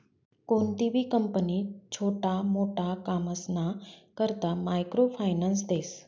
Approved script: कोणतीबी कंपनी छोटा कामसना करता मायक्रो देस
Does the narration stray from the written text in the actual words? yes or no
yes